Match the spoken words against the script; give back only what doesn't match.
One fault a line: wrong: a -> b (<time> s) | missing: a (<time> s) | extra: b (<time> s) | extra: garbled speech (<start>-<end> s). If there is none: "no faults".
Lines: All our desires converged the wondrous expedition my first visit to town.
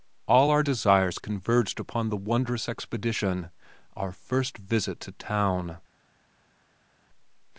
extra: upon (1.8 s)
wrong: my -> our (4.0 s)